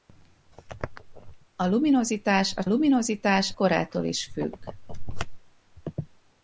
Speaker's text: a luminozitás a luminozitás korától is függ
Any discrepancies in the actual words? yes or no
no